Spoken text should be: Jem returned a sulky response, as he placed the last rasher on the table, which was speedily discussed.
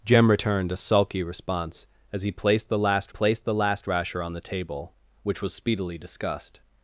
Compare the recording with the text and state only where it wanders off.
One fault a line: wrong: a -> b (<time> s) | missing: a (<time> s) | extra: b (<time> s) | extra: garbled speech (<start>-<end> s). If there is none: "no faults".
extra: placed the last (3.1 s)